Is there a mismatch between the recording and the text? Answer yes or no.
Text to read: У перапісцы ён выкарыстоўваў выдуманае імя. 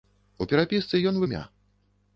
yes